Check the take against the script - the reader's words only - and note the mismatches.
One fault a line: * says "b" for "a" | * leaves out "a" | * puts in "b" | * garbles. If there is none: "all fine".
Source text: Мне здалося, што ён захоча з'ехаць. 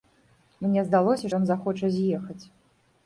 * leaves out "што"